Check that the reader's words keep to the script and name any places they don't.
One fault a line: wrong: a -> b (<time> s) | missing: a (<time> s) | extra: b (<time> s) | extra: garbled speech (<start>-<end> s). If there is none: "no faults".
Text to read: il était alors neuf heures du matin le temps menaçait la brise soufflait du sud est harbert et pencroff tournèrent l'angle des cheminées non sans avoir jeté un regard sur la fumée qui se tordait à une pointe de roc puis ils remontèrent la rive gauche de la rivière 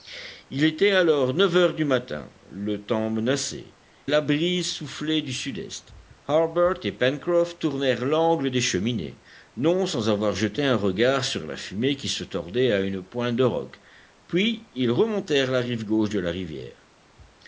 no faults